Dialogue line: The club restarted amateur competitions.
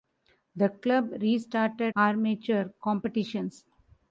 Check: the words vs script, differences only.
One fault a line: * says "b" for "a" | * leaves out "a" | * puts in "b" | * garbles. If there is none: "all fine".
all fine